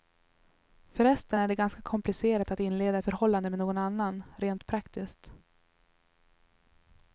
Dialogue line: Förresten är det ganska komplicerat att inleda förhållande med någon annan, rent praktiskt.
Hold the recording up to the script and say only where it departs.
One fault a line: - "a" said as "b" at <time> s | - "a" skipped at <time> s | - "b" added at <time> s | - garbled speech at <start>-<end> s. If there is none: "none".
none